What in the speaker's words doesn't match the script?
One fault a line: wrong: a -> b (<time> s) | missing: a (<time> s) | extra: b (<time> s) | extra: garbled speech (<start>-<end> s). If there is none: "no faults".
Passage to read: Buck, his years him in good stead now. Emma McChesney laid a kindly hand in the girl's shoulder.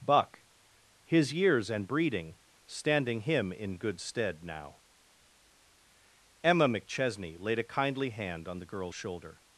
extra: and breeding standing (1.7 s)
wrong: in -> on (8.5 s)